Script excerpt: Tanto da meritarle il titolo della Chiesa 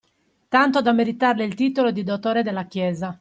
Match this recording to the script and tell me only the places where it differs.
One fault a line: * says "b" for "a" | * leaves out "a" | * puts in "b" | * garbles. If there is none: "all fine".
* puts in "di dottore"